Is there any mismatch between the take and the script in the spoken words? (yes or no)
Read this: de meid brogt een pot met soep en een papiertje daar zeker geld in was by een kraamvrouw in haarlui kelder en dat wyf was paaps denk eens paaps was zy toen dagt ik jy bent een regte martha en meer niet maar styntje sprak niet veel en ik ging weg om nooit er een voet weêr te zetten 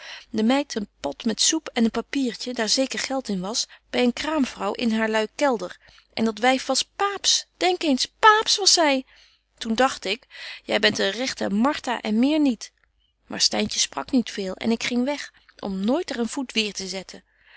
yes